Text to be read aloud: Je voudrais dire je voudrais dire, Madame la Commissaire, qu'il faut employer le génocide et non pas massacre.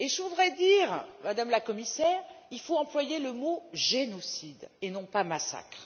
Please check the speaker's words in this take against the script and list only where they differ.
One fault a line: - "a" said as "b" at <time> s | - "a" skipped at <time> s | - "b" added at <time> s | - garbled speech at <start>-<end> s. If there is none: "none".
- "je voudrais dire" skipped at 1.0 s
- "mot" added at 3.3 s